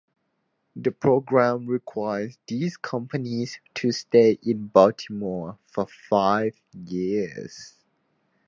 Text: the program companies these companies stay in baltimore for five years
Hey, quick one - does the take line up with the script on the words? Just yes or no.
no